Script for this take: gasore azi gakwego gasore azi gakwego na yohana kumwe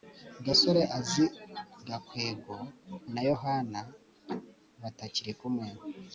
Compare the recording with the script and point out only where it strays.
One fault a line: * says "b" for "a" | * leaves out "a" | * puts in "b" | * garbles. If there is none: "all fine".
* leaves out "gasore azi gakwego"
* puts in "batakiri"